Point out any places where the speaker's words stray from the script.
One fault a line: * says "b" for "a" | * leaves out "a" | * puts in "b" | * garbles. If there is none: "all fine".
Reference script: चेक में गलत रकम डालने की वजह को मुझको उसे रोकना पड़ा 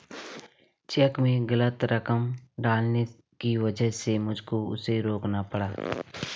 * says "से" for "को"